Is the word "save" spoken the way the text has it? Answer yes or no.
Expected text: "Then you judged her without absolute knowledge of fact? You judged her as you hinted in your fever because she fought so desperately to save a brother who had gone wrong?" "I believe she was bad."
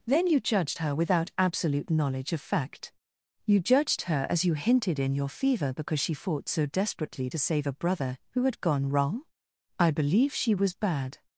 yes